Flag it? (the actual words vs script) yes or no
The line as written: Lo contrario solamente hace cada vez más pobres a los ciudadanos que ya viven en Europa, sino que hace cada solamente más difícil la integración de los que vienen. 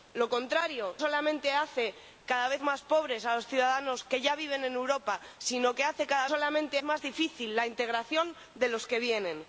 no